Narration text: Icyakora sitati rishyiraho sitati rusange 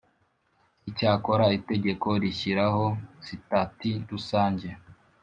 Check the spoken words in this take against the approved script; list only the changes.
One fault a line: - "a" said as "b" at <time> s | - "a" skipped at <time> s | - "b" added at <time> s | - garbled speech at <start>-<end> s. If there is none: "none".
- "sitati" said as "itegeko" at 1.6 s